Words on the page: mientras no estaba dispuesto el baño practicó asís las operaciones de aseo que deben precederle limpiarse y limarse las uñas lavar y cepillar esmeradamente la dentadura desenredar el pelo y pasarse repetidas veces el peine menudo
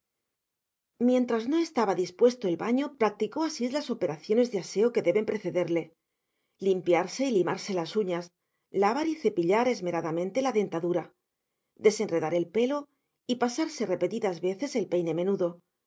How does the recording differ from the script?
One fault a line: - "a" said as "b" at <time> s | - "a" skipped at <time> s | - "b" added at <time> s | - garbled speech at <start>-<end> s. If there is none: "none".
none